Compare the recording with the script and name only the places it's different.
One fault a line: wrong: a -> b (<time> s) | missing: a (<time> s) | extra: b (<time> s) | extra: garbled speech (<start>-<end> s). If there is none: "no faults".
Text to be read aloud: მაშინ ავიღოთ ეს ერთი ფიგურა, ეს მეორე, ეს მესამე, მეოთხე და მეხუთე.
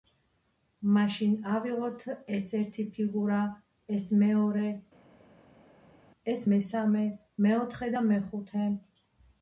no faults